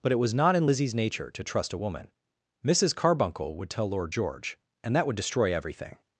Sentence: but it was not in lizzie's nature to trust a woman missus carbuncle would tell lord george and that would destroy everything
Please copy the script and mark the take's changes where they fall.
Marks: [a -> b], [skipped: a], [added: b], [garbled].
but it was not in lizzie's nature to trust a woman missus carbuncle would tell lord george and that would destroy everything